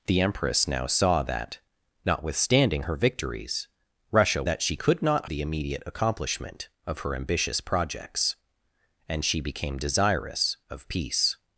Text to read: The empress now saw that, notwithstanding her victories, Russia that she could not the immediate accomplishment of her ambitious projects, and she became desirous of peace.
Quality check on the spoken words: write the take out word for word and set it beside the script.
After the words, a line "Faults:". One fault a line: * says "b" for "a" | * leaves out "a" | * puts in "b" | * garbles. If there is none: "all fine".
The empress now saw that, notwithstanding her victories, Russia that she could not the immediate accomplishment of her ambitious projects, and she became desirous of peace.
Faults:
all fine